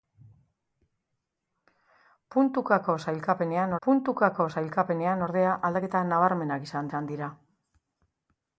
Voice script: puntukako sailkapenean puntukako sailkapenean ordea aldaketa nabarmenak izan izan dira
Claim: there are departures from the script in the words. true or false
false